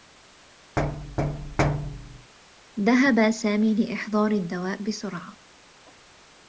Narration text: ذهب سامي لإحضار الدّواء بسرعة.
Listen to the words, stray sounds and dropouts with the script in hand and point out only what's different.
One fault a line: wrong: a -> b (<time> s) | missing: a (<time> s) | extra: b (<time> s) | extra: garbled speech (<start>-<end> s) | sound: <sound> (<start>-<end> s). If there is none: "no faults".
sound: thud (0.8-2.3 s)